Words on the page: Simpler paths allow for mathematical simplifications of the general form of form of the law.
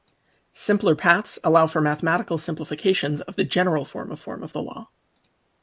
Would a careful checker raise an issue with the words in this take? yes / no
no